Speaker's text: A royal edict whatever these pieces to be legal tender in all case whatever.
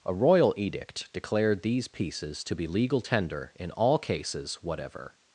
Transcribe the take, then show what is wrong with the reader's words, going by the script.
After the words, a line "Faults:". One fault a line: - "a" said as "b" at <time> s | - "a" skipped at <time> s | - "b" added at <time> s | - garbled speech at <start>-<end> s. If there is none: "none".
A royal edict declared these pieces to be legal tender in all cases whatever.
Faults:
- "whatever" said as "declared" at 1.1 s
- "case" said as "cases" at 4.0 s